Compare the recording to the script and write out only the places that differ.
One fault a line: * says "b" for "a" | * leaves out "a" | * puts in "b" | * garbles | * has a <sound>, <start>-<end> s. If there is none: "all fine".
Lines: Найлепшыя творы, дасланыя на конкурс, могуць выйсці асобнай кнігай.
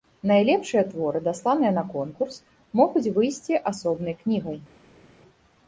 all fine